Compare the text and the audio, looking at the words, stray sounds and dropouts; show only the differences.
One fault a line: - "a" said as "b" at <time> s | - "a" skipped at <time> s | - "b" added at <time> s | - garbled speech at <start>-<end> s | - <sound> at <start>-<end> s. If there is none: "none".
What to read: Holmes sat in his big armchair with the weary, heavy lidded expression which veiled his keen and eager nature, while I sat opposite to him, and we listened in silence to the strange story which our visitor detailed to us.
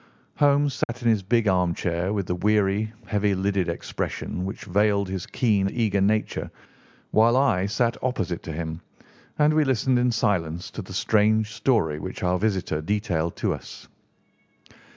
- dropout at 0.8-0.9 s
- "and" skipped at 5.7 s